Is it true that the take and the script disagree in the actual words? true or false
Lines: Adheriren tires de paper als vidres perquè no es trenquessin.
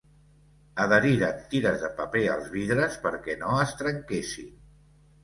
false